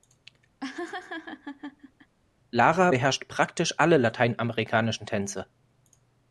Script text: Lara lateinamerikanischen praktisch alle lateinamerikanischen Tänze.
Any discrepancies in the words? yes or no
yes